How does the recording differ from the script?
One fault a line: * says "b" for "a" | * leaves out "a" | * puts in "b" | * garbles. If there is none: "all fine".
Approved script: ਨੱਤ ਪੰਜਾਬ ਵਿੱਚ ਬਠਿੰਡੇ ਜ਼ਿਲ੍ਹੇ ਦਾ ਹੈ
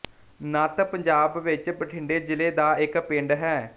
* puts in "ਇੱਕ ਪਿੰਡ"